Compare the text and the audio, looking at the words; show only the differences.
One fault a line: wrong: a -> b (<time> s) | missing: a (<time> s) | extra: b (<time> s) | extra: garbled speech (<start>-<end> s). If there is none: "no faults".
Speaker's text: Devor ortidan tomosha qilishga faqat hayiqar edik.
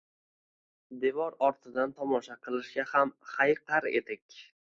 wrong: faqat -> ham (2.9 s)